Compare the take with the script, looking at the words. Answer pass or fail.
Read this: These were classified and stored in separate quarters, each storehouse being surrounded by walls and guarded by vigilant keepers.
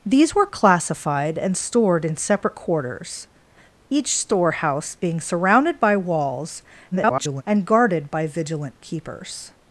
fail